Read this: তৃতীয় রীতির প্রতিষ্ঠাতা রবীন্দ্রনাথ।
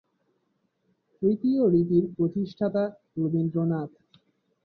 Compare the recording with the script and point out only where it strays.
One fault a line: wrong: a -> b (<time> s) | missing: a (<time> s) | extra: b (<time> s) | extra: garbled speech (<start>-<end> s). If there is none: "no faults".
no faults